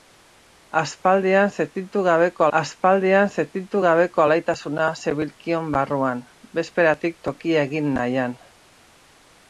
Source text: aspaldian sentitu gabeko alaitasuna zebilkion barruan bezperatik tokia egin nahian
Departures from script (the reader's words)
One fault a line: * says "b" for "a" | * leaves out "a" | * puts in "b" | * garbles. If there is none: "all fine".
* puts in "aspaldian sentitu gabeko"